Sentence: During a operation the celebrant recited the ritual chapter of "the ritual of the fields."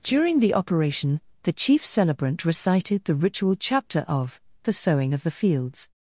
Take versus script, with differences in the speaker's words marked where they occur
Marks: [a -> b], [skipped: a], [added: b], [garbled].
During [a -> the] operation the [added: chief] celebrant recited the ritual chapter of "the [ritual -> sowing] of the fields."